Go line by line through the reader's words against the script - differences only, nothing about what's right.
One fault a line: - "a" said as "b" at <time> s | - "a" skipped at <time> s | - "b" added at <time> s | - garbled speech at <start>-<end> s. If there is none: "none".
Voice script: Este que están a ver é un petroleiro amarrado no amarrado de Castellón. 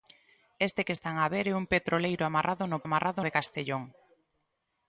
none